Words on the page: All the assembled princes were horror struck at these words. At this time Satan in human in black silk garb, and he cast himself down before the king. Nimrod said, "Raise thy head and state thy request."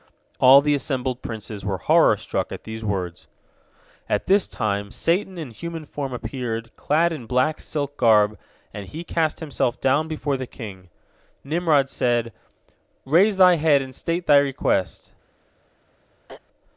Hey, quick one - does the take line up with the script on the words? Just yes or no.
no